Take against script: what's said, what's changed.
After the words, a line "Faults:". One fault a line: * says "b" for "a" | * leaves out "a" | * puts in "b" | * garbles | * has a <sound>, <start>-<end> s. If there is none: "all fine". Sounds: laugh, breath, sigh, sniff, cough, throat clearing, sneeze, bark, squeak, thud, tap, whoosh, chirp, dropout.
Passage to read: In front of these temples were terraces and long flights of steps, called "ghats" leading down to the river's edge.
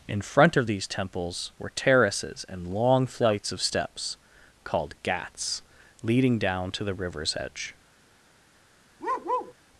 In front of these temples were terraces and long flights of steps, called "ghats" leading down to the river's edge.
Faults:
* has a bark, 9.0-9.5 s